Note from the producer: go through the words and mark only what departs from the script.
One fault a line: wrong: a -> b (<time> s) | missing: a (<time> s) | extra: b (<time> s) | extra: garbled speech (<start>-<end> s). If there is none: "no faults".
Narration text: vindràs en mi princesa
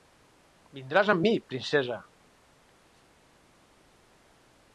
wrong: en -> amb (1.1 s)